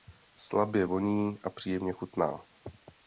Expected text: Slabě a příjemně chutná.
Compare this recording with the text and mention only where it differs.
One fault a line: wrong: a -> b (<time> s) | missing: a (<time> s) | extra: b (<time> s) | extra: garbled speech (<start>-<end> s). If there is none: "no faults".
extra: voní (0.8 s)